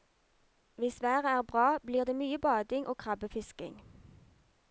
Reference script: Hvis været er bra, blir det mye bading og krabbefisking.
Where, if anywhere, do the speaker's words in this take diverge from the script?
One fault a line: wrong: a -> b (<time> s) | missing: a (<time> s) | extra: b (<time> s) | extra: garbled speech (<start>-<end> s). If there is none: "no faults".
no faults